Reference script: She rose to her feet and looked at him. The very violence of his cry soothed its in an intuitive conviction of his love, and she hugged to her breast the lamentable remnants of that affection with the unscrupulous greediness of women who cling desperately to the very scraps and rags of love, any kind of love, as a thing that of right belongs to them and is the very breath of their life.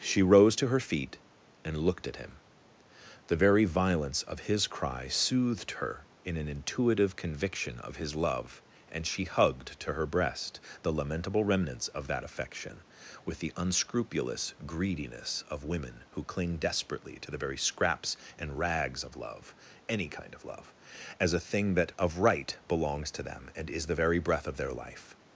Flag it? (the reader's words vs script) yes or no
yes